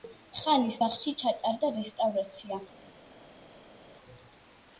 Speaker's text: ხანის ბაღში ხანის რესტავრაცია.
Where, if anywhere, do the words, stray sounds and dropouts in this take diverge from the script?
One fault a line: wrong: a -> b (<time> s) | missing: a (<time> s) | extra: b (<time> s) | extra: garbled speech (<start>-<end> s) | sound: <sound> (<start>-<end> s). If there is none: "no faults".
wrong: ხანის -> ჩატარდა (1.2 s)